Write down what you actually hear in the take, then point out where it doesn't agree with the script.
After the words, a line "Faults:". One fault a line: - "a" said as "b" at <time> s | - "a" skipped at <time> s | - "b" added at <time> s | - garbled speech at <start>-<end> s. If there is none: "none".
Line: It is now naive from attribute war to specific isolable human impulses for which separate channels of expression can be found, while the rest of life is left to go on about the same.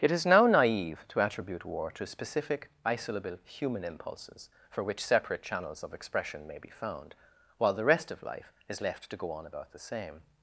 It is now naive to attribute war to specific isolable human impulses for which separate channels of expression may be found, while the rest of life is left to go on about the same.
Faults:
- "from" said as "to" at 1.1 s
- "can" said as "may" at 6.5 s